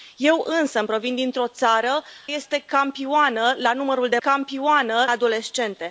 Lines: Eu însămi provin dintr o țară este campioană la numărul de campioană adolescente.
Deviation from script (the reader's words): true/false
false